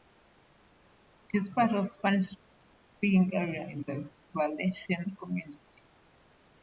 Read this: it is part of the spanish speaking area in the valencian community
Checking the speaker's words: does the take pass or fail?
pass